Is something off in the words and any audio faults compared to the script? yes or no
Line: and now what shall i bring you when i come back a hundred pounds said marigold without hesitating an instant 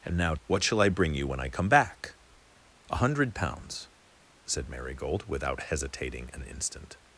no